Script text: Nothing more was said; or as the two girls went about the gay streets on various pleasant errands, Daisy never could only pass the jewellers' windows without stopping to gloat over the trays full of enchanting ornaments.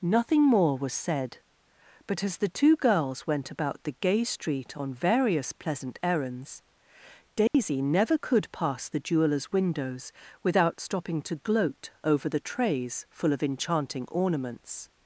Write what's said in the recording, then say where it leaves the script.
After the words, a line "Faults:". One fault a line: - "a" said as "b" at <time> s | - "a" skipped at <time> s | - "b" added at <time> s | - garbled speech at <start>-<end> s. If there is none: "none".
Nothing more was said; but as the two girls went about the gay street on various pleasant errands, Daisy never could pass the jewellers' windows without stopping to gloat over the trays full of enchanting ornaments.
Faults:
- "or" said as "but" at 2.1 s
- "streets" said as "street" at 4.2 s
- "only" skipped at 8.5 s